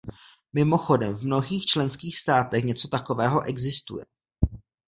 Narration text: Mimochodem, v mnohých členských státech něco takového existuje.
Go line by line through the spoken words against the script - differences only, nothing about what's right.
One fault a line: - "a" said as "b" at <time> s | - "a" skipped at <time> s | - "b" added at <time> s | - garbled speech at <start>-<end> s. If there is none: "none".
none